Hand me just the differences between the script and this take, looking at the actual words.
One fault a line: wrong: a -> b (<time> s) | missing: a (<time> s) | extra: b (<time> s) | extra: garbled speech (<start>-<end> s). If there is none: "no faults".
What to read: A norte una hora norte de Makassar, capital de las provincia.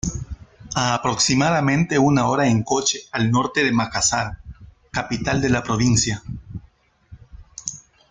wrong: norte -> aproximadamente (0.9 s)
extra: en coche al (2.5 s)
wrong: las -> la (5.5 s)